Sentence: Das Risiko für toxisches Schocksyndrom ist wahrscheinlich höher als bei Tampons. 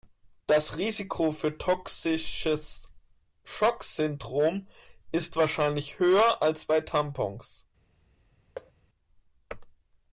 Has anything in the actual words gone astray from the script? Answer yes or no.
no